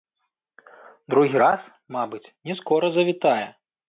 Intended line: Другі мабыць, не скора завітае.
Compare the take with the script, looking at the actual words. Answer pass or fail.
fail